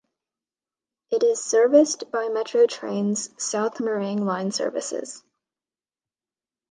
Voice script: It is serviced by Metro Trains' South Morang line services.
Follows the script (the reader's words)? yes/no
yes